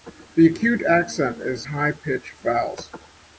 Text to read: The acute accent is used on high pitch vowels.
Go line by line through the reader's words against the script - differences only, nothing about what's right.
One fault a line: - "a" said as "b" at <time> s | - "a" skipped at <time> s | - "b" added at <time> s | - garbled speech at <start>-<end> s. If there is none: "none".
- "used on" skipped at 1.7 s